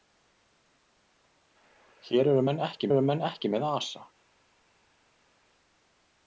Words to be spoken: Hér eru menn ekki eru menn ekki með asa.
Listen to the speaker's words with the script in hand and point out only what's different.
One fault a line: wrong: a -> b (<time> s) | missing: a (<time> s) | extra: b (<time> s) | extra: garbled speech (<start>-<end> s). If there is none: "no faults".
no faults